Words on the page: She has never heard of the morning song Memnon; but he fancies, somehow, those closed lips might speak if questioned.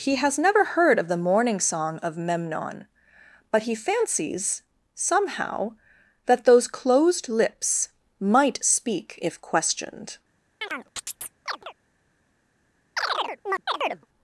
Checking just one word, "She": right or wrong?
wrong